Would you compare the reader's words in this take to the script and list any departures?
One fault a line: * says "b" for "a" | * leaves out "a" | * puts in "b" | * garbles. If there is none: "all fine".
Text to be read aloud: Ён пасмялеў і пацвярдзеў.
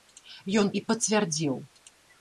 * leaves out "пасмялеў"